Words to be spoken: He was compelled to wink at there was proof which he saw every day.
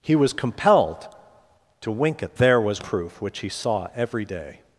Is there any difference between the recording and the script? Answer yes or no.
no